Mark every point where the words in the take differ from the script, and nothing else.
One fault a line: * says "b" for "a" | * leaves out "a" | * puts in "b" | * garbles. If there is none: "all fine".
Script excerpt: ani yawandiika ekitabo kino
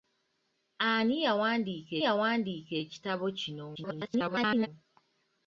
* puts in "yawandiika"
* garbles